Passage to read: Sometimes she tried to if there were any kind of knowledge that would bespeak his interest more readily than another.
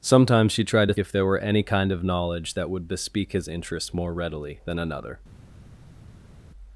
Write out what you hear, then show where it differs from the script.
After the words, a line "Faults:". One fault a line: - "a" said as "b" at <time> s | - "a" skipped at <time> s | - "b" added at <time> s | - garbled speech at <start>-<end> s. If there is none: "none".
Sometimes she tried to if there were any kind of knowledge that would bespeak his interest more readily than another.
Faults:
none